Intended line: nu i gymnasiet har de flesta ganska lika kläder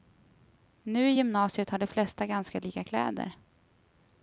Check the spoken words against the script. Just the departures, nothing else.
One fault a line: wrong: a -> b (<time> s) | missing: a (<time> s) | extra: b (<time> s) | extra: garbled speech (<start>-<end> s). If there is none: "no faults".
no faults